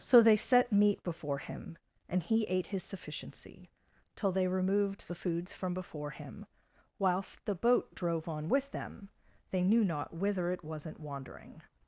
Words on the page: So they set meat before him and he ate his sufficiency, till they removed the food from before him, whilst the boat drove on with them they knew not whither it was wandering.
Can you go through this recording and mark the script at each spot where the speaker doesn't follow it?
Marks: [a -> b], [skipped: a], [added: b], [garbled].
So they set meat before him and he ate his sufficiency, till they removed the [food -> foods] from before him, whilst the boat drove on with them they knew not whither it [was -> wasn't] wandering.